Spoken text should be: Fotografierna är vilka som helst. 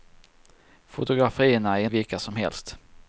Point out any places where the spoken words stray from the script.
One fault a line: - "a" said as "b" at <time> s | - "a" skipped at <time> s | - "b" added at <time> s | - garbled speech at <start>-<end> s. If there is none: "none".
none